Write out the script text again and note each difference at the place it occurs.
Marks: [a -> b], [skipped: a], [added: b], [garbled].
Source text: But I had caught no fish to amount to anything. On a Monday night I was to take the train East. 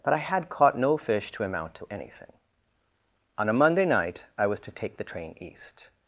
But I had caught no fish to amount to anything. On a Monday night I was to take the train East.